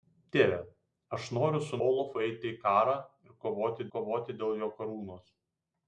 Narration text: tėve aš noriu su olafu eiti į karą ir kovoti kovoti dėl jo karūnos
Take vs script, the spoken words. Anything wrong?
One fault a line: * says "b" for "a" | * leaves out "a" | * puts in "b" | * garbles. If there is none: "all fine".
all fine